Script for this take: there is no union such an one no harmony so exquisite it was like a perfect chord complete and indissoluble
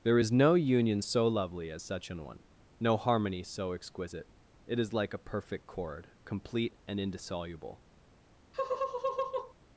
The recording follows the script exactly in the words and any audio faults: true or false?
false